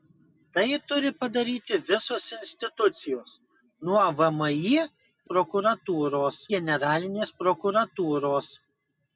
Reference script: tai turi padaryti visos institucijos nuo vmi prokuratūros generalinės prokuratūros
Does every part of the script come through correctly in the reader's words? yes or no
yes